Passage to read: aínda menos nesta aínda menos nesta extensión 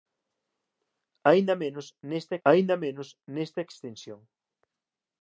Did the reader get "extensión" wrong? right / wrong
right